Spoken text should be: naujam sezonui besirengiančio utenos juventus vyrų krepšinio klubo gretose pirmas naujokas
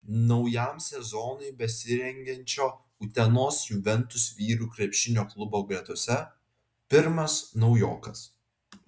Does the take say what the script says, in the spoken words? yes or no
yes